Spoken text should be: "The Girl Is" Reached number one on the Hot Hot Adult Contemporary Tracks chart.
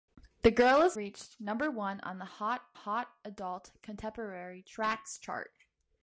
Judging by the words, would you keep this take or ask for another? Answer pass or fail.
pass